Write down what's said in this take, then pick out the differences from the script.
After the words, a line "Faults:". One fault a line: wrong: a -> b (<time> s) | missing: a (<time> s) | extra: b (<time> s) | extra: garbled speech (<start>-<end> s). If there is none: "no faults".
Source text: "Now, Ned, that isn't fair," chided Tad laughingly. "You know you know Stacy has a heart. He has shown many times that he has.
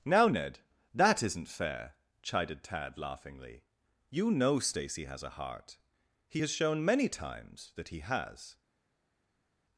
"Now, Ned, that isn't fair," chided Tad laughingly. "You know Stacy has a heart. He has shown many times that he has.
Faults:
missing: you know (4.6 s)